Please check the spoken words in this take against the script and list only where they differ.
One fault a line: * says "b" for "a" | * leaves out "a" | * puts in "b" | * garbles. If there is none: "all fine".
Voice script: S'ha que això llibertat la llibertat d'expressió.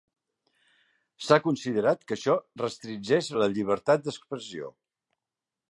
* puts in "considerat"
* says "restringeix" for "llibertat"